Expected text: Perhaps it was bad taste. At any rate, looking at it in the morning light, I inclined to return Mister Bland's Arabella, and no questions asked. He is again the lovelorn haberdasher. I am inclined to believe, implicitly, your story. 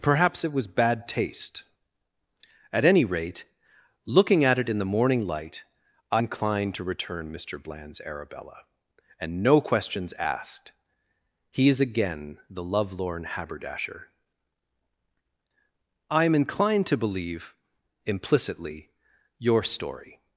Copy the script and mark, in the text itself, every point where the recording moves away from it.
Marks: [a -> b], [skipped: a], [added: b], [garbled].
Perhaps it was bad taste. At any rate, looking at it in the morning light, I inclined to return Mister Bland's Arabella, and no questions asked. He is again the lovelorn haberdasher. I am inclined to believe, implicitly, your story.